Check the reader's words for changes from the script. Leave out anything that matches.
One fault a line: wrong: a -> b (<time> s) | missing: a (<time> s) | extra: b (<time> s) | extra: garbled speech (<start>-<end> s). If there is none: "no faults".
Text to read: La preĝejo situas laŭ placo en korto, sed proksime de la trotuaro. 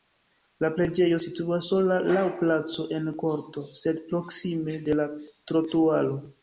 extra: sola (1.7 s)